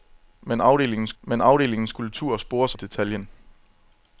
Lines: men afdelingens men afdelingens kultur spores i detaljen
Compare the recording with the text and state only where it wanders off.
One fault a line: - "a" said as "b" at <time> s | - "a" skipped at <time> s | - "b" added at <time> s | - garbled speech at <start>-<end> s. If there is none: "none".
none